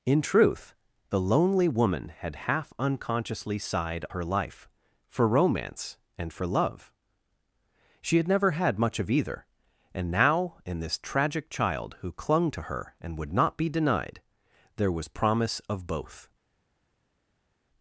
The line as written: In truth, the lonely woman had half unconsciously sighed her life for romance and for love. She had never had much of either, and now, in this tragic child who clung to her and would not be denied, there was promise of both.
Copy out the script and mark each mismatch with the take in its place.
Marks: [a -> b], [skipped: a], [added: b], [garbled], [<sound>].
In truth, the lonely woman had half unconsciously sighed her life for romance and for love. She had never had much of either, and now, in this tragic child who clung to her and would not be denied, there was promise of both.